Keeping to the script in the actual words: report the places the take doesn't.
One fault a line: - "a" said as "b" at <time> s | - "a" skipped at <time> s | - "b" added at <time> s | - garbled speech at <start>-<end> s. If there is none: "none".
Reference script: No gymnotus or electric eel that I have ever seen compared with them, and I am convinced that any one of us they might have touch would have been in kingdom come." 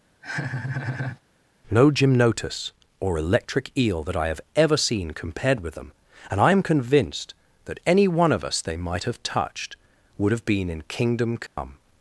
- "touch" said as "touched" at 9.2 s